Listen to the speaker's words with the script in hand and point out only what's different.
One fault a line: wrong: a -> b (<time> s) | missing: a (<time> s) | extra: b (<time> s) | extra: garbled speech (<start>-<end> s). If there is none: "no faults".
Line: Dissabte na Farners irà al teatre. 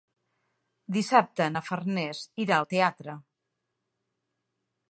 no faults